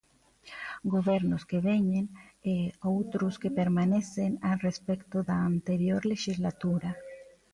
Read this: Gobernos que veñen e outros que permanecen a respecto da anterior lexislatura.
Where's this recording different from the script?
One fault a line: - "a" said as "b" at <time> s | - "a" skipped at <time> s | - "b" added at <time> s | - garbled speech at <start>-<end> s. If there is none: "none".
none